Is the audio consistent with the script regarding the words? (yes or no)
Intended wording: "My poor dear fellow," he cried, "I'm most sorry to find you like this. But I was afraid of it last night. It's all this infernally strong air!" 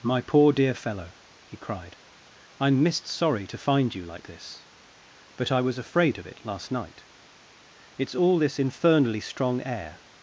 no